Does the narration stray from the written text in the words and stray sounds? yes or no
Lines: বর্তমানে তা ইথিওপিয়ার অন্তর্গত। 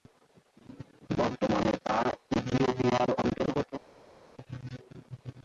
no